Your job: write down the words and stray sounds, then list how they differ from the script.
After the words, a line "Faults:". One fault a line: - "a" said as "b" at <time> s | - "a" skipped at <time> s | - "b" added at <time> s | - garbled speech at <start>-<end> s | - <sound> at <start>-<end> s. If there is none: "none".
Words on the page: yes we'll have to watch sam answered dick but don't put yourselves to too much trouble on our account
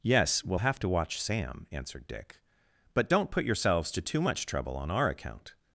yes we'll have to watch sam answered dick but don't put yourselves to too much trouble on our account
Faults:
none